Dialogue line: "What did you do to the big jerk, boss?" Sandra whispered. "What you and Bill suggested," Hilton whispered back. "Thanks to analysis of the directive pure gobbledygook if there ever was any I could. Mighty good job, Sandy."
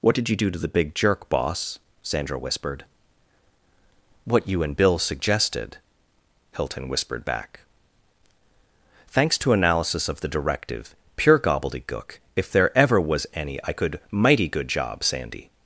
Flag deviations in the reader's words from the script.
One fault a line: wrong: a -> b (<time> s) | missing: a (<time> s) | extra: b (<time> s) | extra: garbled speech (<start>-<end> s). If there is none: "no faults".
no faults